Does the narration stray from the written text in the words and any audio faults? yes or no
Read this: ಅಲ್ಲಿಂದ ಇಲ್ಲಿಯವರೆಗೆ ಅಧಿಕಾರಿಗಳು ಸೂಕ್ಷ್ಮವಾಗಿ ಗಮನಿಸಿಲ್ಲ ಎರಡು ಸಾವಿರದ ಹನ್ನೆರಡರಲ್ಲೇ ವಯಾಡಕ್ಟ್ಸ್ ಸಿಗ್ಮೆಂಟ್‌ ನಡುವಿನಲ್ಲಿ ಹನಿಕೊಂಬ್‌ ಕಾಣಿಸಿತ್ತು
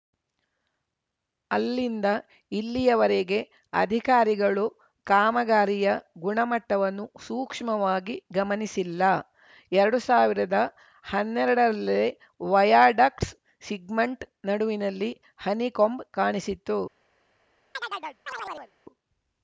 yes